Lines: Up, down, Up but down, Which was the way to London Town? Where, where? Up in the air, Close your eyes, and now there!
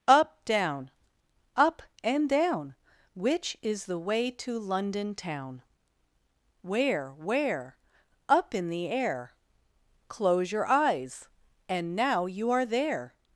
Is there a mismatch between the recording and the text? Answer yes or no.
yes